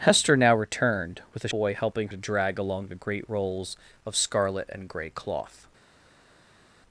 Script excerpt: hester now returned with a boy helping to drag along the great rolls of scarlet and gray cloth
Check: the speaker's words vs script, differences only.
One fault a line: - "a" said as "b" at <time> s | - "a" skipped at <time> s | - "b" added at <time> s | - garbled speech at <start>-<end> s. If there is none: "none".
none